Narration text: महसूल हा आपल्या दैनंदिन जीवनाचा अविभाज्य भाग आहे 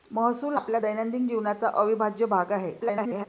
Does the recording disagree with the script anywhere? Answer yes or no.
yes